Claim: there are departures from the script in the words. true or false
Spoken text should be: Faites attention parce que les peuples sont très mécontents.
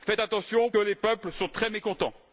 true